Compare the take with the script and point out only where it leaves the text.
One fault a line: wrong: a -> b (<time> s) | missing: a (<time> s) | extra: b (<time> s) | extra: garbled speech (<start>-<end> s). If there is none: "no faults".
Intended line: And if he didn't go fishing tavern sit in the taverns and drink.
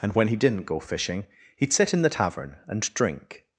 wrong: if -> when (0.1 s)
wrong: tavern -> he'd (1.6 s)
wrong: taverns -> tavern (2.1 s)